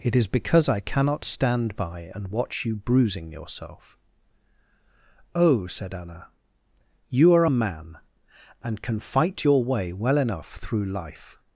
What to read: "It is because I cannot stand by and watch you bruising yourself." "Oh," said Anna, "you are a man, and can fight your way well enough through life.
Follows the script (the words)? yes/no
yes